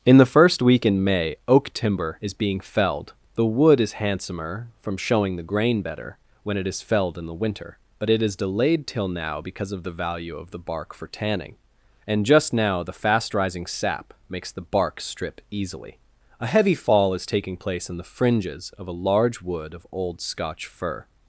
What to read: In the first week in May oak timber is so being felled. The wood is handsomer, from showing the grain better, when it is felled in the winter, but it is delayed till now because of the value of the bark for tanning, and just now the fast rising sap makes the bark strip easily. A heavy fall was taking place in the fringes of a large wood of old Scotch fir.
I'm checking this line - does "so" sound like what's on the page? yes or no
no